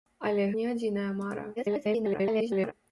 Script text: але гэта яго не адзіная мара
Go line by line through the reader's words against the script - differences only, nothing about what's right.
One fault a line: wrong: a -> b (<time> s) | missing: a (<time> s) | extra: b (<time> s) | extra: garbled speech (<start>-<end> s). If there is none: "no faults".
missing: гэта яго (0.5 s)
extra: garbled speech (1.6-2.7 s)